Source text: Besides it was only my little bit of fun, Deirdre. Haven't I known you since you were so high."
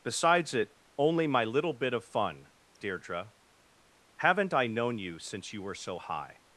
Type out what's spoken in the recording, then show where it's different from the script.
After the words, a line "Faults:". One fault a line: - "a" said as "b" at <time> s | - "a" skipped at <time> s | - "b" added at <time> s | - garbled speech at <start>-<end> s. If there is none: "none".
Besides it only my little bit of fun, Deirdre. Haven't I known you since you were so high."
Faults:
- "was" skipped at 0.8 s